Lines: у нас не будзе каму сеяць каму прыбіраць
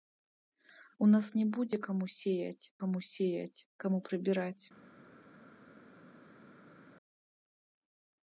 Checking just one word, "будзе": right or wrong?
right